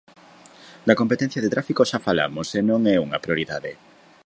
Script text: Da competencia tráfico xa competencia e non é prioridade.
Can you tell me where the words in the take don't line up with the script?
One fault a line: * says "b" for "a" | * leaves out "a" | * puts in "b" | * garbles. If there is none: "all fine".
* puts in "de"
* says "falamos" for "competencia"
* puts in "unha"